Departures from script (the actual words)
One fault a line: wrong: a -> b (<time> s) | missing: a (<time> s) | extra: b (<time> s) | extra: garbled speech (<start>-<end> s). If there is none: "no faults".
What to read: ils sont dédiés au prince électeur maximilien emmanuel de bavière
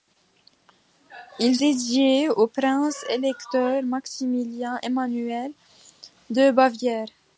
missing: sont (1.6 s)